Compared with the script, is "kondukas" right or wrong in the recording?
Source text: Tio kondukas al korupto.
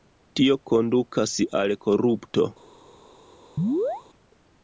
right